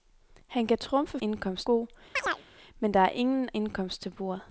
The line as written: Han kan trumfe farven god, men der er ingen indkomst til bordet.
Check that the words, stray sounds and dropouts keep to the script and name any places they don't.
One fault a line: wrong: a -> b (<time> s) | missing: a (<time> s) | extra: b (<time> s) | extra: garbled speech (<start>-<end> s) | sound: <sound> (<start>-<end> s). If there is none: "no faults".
wrong: farven -> indkomst (1.2 s)
sound: chirp (2.2-2.5 s)